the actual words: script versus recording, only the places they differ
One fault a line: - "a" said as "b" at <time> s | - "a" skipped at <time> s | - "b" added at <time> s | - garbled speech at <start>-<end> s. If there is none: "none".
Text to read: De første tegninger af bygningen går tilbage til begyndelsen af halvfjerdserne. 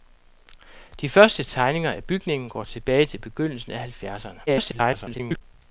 - garbled speech at 4.5-5.4 s